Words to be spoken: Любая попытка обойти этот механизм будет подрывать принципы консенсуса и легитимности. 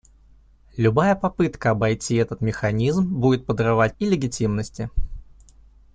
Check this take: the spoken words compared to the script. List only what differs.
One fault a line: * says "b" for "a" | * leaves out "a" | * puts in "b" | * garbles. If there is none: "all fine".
* leaves out "принципы консенсуса"